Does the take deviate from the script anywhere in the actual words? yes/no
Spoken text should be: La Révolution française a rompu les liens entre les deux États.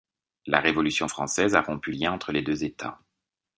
yes